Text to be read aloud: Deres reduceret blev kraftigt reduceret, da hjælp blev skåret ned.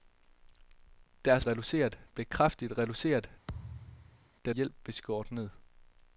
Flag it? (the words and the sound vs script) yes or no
yes